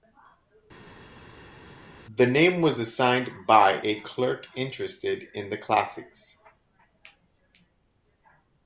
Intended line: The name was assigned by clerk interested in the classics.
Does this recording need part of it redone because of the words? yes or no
yes